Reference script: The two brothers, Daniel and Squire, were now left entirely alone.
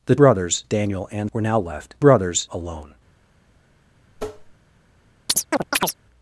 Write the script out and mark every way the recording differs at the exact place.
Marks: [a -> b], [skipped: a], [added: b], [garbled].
The [skipped: two] brothers, Daniel and [skipped: Squire,] were now left [entirely -> brothers] alone.